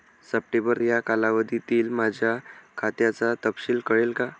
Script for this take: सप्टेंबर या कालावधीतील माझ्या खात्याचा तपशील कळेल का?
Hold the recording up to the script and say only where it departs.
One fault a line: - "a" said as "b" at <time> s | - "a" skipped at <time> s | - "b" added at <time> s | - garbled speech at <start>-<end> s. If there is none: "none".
none